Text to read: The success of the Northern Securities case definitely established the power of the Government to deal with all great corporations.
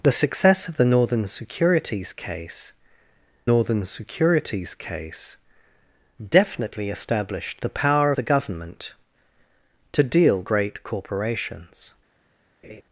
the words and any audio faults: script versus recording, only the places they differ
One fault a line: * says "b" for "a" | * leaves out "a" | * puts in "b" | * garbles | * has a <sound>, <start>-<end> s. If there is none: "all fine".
* puts in "Northern Securities case"
* leaves out "of"
* leaves out "with all"
* has a laugh, 12.6-12.8 s